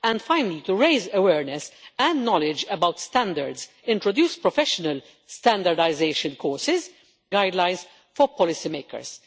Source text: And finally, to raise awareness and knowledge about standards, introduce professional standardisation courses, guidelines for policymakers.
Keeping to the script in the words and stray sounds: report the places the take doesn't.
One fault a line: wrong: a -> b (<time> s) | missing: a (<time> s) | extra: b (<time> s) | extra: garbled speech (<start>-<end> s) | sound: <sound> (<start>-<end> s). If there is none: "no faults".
no faults